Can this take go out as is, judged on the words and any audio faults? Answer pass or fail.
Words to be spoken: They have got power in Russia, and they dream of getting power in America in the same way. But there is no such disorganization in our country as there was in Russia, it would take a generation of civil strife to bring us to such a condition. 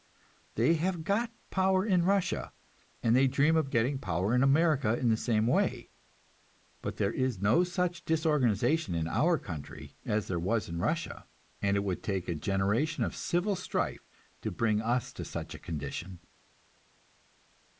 fail